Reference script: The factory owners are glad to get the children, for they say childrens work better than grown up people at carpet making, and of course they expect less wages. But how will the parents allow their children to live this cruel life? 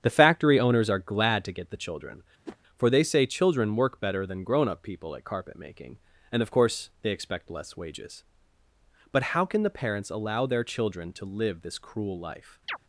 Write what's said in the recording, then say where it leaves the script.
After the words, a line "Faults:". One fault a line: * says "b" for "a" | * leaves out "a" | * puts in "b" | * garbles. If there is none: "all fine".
The factory owners are glad to get the children, for they say children work better than grown up people at carpet making, and of course they expect less wages. But how can the parents allow their children to live this cruel life?
Faults:
* says "children" for "childrens"
* says "can" for "will"